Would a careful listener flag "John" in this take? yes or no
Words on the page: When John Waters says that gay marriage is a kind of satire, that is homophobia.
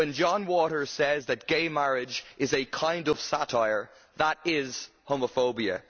no